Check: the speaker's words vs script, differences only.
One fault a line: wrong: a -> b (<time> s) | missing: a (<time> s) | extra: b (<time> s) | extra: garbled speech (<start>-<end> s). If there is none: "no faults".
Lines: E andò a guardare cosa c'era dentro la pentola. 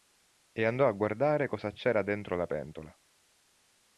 no faults